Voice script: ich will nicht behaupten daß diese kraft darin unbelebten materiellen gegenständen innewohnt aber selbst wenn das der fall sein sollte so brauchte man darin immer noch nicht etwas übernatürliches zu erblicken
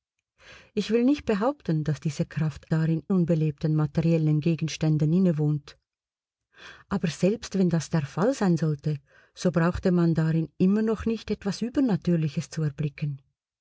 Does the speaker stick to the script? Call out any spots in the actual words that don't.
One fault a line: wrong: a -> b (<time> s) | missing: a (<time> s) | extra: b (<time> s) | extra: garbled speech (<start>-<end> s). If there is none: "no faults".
no faults